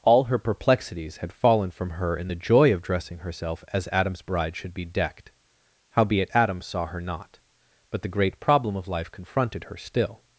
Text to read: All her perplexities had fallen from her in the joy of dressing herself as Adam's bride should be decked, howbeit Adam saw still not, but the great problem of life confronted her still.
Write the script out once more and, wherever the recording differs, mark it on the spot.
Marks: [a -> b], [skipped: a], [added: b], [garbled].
All her perplexities had fallen from her in the joy of dressing herself as Adam's bride should be decked, howbeit Adam saw [still -> her] not, but the great problem of life confronted her still.